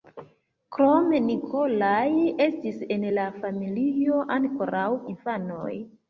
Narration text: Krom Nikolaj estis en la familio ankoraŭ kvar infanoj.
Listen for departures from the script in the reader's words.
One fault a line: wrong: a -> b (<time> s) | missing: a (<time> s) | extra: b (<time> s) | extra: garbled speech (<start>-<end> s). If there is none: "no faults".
missing: kvar (4.9 s)